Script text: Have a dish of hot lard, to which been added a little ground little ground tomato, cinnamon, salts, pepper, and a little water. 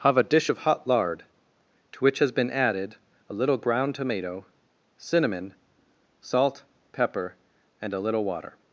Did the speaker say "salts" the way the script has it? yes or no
no